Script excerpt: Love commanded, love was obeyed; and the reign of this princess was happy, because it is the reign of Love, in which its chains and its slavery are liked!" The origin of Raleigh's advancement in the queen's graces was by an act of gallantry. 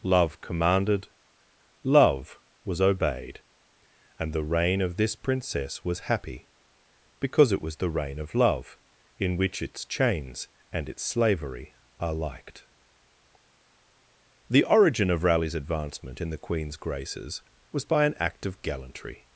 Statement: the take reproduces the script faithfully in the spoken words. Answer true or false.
false